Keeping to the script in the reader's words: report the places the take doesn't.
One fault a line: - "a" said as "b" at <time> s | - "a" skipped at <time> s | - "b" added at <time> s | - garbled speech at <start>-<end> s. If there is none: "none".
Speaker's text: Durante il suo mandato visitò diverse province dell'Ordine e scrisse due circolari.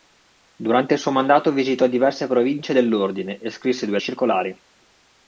none